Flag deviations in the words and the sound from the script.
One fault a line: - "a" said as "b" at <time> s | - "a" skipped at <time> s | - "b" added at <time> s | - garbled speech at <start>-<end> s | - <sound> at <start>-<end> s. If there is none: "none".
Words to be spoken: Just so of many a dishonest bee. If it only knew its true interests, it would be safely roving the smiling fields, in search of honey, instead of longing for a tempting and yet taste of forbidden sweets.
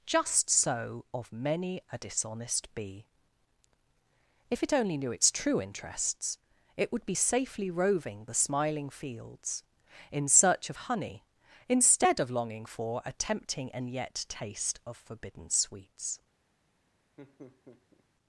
- laugh at 17.2-18.0 s